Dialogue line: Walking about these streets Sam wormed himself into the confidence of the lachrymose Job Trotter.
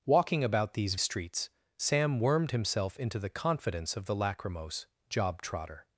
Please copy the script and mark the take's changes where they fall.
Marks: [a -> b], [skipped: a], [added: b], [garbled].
Walking about these streets Sam wormed himself into the confidence of the lachrymose Job Trotter.